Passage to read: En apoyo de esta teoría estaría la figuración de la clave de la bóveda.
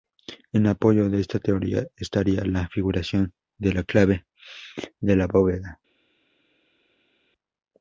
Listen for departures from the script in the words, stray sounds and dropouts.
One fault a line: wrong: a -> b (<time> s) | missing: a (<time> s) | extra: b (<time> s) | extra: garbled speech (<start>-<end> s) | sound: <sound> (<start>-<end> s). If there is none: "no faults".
no faults